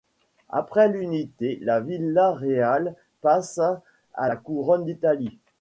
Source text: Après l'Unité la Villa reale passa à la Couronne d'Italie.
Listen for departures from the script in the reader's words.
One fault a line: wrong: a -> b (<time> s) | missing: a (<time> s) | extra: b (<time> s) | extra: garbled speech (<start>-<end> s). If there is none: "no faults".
no faults